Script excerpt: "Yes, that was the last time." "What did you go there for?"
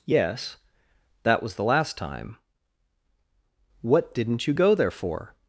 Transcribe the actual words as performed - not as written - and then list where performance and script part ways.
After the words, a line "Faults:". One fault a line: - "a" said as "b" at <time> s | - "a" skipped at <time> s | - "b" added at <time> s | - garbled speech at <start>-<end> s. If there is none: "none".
"Yes, that was the last time." "What didn't you go there for?"
Faults:
- "did" said as "didn't" at 4.1 s